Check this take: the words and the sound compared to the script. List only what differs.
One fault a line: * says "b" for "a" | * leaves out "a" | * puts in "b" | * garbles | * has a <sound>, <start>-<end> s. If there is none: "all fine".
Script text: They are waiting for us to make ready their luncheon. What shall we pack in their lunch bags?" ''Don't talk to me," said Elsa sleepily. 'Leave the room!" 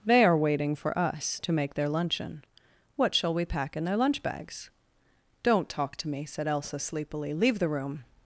* leaves out "ready"